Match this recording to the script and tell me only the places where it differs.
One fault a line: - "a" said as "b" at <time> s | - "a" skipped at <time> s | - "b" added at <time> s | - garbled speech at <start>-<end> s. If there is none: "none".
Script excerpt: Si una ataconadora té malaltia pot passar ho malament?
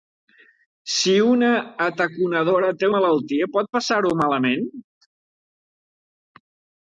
none